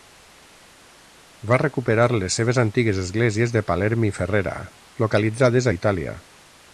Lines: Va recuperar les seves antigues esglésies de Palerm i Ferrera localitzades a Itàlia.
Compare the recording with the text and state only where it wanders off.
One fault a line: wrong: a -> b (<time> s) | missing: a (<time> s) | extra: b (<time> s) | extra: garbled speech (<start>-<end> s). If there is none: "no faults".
no faults